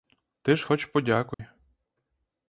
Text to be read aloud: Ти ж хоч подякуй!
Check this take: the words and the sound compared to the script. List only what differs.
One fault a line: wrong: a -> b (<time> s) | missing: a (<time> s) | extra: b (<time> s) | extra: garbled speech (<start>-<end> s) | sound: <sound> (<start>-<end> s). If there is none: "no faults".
sound: dropout (1.3-1.4 s)